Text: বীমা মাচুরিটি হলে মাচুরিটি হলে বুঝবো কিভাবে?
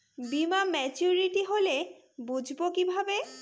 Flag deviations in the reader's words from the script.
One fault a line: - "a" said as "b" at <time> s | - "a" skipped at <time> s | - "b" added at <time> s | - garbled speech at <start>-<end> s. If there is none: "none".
- "মাচুরিটি হলে" skipped at 1.8 s